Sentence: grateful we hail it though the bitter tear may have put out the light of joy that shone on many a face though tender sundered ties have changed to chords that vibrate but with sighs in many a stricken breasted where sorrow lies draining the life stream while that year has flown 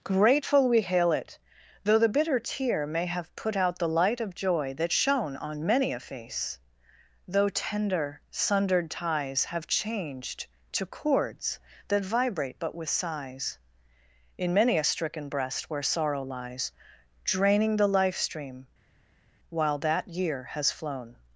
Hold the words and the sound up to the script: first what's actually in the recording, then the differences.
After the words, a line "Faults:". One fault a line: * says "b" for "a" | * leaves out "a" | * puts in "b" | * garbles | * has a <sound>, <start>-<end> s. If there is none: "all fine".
grateful we hail it though the bitter tear may have put out the light of joy that shone on many a face though tender sundered ties have changed to chords that vibrate but with sighs in many a stricken breast where sorrow lies draining the life stream while that year has flown
Faults:
* says "breast" for "breasted"